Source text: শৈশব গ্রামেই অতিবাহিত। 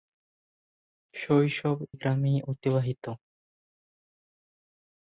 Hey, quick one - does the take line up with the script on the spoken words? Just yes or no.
yes